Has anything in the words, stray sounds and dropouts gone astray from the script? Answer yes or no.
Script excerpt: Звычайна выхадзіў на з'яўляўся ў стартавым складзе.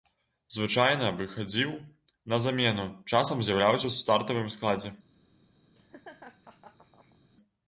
yes